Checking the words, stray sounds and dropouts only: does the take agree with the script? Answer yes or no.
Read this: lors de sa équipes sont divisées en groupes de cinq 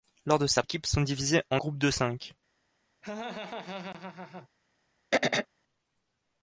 no